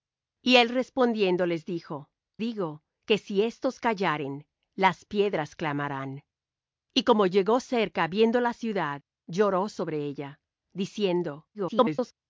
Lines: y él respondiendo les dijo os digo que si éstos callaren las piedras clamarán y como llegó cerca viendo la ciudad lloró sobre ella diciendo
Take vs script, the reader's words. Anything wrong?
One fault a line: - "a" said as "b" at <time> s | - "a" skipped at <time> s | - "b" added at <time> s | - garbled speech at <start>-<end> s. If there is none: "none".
- "os" skipped at 2.1 s
- garbled speech at 11.5-12.1 s